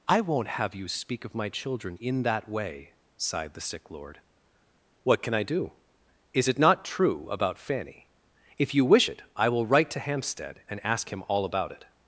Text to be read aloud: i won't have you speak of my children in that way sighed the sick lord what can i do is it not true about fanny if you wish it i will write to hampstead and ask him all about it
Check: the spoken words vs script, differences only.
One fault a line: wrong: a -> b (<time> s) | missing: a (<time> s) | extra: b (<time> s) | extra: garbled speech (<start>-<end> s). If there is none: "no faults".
no faults